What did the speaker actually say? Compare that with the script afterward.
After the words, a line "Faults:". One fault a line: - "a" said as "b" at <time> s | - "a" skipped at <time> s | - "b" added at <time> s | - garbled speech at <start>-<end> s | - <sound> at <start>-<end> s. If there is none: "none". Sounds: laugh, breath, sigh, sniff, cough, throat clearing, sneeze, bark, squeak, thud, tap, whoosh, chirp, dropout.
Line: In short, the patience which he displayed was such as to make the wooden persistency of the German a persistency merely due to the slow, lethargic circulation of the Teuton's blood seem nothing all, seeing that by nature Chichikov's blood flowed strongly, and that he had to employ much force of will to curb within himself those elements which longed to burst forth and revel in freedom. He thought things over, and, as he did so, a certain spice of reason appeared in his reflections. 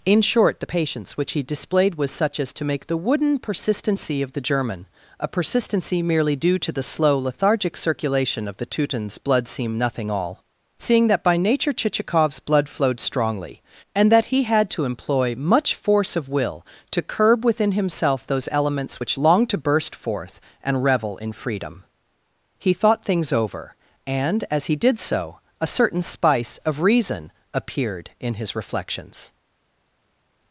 In short, the patience which he displayed was such as to make the wooden persistency of the German a persistency merely due to the slow, lethargic circulation of the Teuton's blood seem nothing all, seeing that by nature Chichikov's blood flowed strongly, and that he had to employ much force of will to curb within himself those elements which longed to burst forth and revel in freedom. He thought things over, and, as he did so, a certain spice of reason appeared in his reflections.
Faults:
none